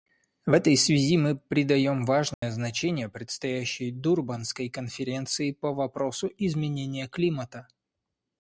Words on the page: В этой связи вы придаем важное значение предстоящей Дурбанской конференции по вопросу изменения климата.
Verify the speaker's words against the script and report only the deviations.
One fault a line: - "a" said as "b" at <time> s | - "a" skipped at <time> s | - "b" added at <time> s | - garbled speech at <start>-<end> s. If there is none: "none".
- "вы" said as "мы" at 1.2 s